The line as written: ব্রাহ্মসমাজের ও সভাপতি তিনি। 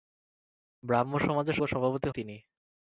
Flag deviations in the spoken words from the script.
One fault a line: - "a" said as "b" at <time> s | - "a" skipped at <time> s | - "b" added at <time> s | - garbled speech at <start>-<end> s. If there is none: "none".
none